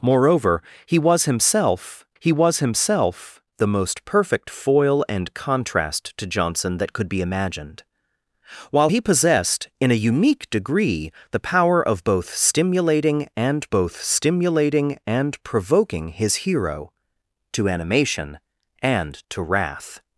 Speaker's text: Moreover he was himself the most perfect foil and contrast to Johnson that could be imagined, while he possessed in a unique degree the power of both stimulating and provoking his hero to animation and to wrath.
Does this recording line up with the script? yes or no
no